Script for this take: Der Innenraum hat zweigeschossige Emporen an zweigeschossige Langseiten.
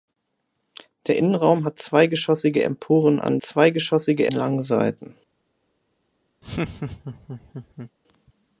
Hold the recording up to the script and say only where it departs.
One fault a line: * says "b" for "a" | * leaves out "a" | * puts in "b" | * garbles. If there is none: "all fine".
all fine